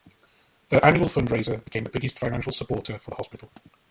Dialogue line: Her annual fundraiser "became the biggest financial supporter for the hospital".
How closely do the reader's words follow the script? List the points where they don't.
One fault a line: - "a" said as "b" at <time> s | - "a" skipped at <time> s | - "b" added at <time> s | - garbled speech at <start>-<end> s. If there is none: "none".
none